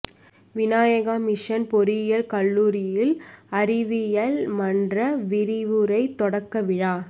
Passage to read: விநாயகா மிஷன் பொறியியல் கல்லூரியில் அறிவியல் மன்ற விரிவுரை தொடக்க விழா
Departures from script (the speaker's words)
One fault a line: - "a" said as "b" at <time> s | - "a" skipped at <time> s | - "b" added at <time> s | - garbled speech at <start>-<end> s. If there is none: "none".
none